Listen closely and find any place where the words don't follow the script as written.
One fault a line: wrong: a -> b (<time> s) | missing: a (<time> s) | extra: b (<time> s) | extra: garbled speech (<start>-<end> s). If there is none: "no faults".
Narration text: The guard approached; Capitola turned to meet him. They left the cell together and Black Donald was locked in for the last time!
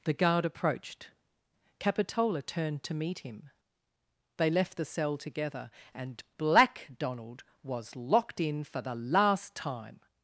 no faults